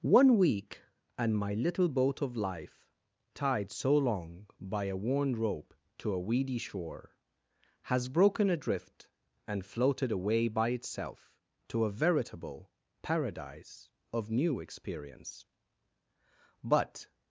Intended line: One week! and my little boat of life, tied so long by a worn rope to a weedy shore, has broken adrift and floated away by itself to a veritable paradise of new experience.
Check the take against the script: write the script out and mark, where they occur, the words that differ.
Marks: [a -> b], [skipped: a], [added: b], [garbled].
One week! and my little boat of life, tied so long by a worn rope to a weedy shore, has broken adrift and floated away by itself to a veritable paradise of new experience. [added: But]